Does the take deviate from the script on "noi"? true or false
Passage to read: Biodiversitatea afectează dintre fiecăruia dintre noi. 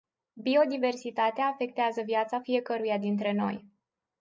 false